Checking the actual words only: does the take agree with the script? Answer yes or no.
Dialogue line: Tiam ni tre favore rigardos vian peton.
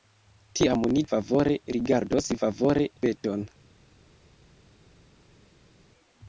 no